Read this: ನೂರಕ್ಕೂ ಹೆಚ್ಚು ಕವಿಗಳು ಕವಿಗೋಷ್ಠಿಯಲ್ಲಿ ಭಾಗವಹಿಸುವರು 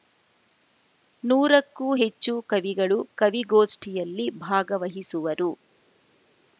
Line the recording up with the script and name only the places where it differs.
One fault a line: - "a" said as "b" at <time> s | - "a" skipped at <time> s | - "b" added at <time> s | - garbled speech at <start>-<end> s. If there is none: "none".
none